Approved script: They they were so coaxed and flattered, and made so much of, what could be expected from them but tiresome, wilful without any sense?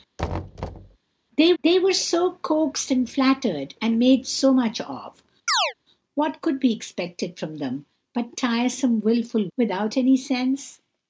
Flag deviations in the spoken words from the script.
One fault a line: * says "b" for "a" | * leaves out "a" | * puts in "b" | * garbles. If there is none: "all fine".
all fine